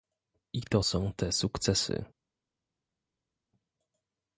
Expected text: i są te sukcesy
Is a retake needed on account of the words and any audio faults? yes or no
yes